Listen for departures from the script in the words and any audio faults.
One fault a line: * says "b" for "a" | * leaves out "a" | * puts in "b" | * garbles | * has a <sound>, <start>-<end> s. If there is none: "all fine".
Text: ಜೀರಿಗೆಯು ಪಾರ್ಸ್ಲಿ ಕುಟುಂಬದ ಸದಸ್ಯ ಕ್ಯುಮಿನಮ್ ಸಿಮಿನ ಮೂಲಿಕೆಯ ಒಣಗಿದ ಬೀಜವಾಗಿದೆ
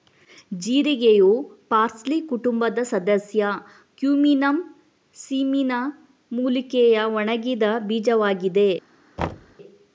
* has a thud, 9.2-9.6 s